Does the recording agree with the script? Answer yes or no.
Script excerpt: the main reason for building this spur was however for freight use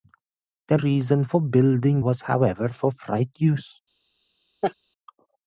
no